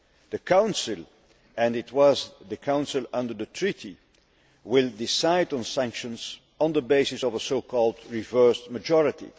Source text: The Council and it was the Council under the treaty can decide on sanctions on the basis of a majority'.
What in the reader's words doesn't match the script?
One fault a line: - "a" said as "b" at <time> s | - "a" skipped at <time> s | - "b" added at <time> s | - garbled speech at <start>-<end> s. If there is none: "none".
- "can" said as "will" at 4.6 s
- "so called reversed" added at 7.4 s